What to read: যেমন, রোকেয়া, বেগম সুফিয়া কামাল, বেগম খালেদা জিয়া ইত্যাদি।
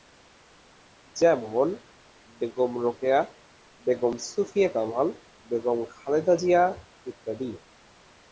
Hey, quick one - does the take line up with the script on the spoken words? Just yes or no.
no